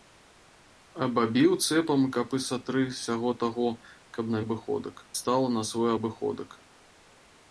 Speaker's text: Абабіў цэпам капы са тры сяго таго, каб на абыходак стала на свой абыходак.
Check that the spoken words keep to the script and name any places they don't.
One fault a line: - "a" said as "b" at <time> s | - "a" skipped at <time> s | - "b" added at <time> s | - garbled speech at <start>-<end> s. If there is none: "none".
none